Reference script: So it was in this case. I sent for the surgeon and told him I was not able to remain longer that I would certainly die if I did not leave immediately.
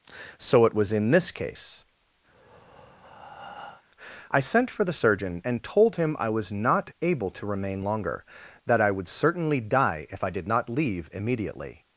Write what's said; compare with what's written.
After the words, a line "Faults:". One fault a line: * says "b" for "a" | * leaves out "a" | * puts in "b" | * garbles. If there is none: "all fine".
So it was in this case. I sent for the surgeon and told him I was not able to remain longer that I would certainly die if I did not leave immediately.
Faults:
all fine